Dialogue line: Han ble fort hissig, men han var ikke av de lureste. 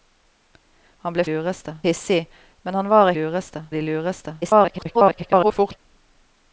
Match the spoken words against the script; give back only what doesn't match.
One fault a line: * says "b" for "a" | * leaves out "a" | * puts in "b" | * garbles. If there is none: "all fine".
* says "lureste" for "fort"
* says "lureste" for "ikke"
* garbles